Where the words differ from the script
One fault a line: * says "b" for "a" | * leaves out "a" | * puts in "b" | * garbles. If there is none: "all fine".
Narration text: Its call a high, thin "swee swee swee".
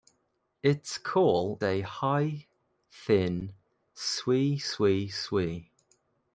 all fine